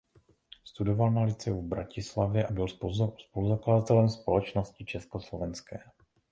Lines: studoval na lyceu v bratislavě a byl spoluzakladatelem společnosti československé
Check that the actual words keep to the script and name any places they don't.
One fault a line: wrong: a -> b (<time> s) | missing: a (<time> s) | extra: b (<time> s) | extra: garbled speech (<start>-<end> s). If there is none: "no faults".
no faults